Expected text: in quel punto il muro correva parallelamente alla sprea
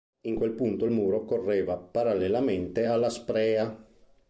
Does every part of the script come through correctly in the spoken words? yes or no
yes